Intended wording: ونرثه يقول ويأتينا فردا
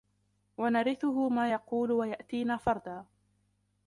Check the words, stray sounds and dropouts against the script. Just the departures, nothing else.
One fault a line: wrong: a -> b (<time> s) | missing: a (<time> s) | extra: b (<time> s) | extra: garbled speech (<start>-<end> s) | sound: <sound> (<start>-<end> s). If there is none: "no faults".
extra: ما (1.3 s)